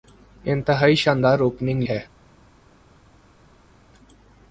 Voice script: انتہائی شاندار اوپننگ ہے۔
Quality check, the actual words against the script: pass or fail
pass